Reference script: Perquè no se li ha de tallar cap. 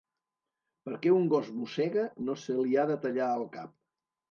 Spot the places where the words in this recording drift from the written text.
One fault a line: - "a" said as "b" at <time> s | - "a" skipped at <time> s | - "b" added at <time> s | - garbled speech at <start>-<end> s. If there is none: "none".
- "un gos mossega" added at 1.2 s
- "el" added at 3.4 s